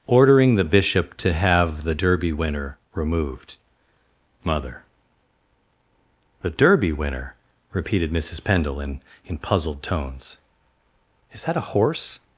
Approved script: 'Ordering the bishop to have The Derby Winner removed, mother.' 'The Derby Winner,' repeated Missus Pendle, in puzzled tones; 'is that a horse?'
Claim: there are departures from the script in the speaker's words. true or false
true